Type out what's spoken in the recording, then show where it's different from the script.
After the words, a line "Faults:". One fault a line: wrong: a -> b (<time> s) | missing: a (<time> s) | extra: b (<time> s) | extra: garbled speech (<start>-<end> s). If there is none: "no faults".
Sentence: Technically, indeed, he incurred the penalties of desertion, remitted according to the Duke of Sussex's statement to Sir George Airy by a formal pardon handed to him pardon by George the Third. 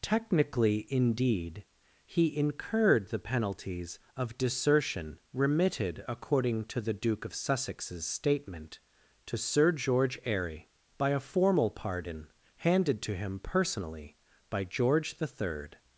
Technically, indeed, he incurred the penalties of desertion, remitted according to the Duke of Sussex's statement to Sir George Airy by a formal pardon handed to him personally by George the Third.
Faults:
wrong: pardon -> personally (13.4 s)